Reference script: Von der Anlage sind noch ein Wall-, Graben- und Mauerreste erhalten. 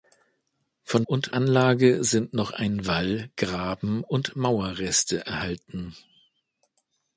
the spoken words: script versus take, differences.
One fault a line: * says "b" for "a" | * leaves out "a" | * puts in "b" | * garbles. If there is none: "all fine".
* says "und" for "der"